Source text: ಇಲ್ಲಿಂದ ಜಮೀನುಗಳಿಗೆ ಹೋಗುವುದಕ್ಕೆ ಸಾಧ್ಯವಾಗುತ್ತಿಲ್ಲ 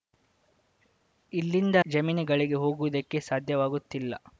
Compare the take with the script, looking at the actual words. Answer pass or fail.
pass